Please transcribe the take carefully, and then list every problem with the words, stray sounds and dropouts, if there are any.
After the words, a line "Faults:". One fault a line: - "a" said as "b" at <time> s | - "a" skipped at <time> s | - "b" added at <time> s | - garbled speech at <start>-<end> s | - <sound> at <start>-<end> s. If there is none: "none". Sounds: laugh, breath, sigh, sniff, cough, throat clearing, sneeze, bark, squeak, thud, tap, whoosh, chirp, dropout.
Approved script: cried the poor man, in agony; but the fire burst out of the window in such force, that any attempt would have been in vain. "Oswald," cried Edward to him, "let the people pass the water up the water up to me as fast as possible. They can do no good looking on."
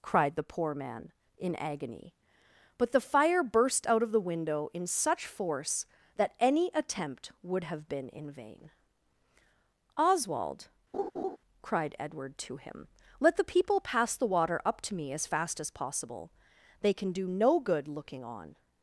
cried the poor man, in agony; but the fire burst out of the window in such force, that any attempt would have been in vain. "Oswald," cried Edward to him, "let the people pass the water up to me as fast as possible. They can do no good looking on."
Faults:
- laugh at 10.9-11.4 s
- "the water up" skipped at 14.8 s